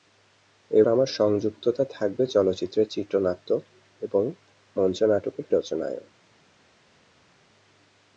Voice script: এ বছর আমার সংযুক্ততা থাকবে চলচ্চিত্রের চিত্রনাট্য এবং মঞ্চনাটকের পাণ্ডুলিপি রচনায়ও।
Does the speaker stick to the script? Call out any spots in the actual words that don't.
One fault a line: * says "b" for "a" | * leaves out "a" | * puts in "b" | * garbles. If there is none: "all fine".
* leaves out "বছর"
* leaves out "পাণ্ডুলিপি"